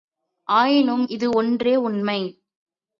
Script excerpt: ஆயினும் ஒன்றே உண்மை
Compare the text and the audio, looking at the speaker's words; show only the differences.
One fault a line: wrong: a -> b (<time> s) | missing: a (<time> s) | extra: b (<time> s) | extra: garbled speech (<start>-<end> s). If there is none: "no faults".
extra: இது (1.1 s)